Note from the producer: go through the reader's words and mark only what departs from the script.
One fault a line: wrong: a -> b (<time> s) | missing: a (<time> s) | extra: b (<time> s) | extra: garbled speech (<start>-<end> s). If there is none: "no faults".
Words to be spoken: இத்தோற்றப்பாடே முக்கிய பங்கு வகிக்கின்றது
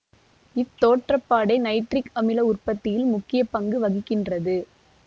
extra: நைட்ரிக் அமில உற்பத்தியில் (1.6 s)